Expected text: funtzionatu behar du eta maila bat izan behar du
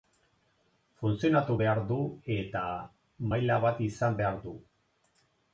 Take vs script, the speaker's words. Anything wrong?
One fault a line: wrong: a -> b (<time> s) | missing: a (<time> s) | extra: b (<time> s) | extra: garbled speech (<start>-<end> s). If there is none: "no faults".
no faults